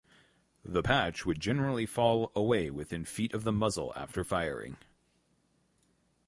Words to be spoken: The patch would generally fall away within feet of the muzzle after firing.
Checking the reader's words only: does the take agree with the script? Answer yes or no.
yes